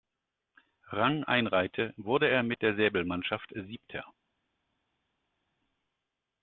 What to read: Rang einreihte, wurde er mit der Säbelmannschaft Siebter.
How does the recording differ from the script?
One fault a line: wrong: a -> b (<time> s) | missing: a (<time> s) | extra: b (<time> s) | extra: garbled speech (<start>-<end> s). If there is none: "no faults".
no faults